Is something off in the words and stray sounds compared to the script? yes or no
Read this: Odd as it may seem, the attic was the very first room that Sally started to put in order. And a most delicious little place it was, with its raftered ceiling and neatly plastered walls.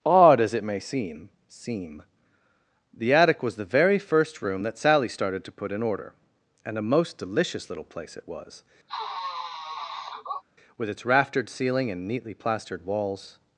yes